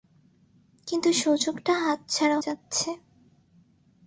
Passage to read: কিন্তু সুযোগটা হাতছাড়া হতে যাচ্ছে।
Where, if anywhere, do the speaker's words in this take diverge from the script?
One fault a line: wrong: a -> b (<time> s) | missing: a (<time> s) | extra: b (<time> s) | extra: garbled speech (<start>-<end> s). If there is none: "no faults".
missing: হতে (2.4 s)